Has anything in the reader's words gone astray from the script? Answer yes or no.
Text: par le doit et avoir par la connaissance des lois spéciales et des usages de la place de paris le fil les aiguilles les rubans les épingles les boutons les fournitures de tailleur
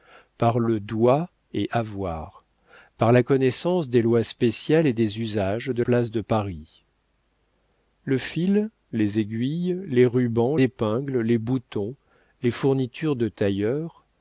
yes